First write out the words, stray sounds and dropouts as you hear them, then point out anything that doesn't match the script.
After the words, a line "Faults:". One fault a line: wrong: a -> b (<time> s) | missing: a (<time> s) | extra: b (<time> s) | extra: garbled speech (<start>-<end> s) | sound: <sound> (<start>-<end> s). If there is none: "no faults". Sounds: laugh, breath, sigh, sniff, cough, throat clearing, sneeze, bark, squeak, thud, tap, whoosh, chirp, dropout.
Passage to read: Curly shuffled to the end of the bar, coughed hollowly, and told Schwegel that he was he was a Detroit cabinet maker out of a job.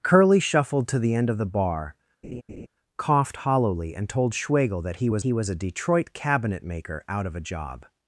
Curly shuffled to the end of the bar, coughed hollowly, and told Schwegel that he was he was a Detroit cabinet maker out of a job.
Faults:
sound: laugh (2.2-2.7 s)